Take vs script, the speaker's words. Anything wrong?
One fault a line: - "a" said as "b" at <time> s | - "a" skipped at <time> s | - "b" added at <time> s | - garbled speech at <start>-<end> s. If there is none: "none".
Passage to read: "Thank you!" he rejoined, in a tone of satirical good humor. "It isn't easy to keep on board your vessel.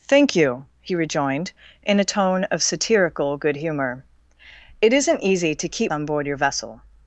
none